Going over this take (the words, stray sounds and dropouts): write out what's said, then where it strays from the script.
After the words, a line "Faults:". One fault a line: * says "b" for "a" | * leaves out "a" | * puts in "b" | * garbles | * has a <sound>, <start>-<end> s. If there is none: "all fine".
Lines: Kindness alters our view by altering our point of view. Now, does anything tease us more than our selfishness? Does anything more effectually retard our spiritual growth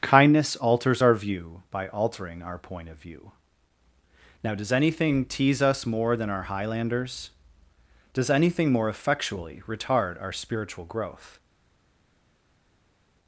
Kindness alters our view by altering our point of view. Now, does anything tease us more than our highlanders? Does anything more effectually retard our spiritual growth
Faults:
* says "highlanders" for "selfishness"